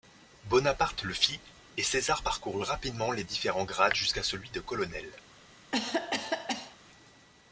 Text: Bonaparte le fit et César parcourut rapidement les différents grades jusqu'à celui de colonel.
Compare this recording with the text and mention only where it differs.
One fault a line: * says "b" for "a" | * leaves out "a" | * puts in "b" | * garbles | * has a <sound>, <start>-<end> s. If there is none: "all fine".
* has a cough, 5.7-6.8 s